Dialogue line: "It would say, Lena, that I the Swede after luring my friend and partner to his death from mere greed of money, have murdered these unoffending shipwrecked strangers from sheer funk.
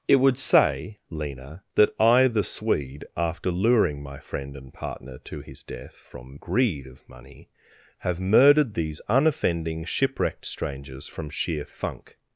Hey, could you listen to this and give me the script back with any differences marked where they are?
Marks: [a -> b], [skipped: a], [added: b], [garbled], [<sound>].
"It would say, Lena, that I the Swede after luring my friend and partner to his death from [skipped: mere] greed of money, have murdered these unoffending shipwrecked strangers from sheer funk.